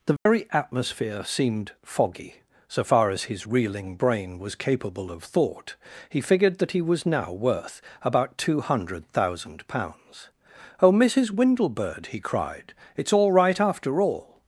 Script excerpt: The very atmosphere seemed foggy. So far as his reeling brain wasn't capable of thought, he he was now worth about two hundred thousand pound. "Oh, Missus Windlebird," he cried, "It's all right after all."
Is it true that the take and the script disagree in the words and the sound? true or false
true